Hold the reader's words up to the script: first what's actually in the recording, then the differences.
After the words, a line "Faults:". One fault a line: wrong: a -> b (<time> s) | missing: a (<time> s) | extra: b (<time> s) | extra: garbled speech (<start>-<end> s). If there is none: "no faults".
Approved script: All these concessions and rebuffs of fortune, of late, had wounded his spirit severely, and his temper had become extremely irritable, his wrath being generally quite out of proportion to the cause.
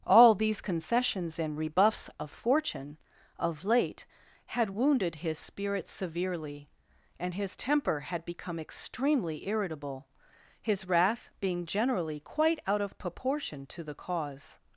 All these concessions and rebuffs of fortune, of late, had wounded his spirit severely, and his temper had become extremely irritable, his wrath being generally quite out of proportion to the cause.
Faults:
no faults